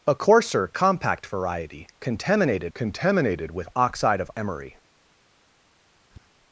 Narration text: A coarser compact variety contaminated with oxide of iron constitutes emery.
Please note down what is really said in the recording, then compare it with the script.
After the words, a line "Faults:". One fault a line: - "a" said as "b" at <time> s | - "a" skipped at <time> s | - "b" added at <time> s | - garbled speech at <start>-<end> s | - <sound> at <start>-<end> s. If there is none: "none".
A coarser compact variety contaminated contaminated with oxide of emery.
Faults:
- "contaminated" added at 2.7 s
- "iron constitutes" skipped at 4.3 s
- tap at 6.1-6.3 s